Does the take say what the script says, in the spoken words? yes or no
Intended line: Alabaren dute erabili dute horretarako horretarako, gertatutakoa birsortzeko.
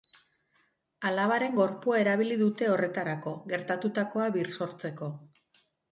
no